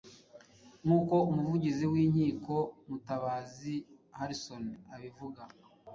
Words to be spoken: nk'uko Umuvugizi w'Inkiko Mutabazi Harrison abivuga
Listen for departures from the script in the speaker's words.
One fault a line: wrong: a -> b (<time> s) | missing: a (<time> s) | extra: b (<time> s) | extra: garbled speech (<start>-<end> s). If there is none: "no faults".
no faults